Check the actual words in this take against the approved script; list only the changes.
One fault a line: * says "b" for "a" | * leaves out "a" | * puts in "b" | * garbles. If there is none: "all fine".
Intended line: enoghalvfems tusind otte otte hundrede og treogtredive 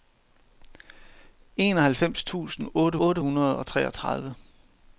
all fine